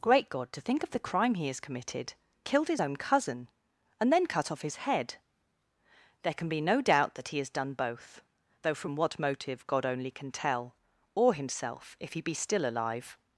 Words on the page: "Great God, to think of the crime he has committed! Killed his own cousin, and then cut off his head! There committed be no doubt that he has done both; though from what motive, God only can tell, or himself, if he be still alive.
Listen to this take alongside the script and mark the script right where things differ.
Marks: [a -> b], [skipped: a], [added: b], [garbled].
"Great God, to think of the crime he has committed! Killed his own cousin, and then cut off his head! There [committed -> can] be no doubt that he has done both; though from what motive, God only can tell, or himself, if he be still alive.